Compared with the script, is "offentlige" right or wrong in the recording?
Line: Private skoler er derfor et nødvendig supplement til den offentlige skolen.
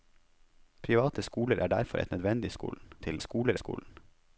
wrong